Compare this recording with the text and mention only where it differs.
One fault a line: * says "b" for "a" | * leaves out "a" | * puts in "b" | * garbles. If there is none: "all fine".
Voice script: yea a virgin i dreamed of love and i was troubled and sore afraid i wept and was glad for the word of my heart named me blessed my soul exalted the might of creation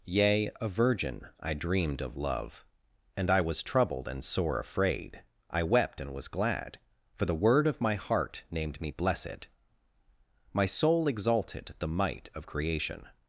all fine